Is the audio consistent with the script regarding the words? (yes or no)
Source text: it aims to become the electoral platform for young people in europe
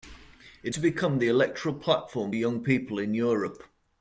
no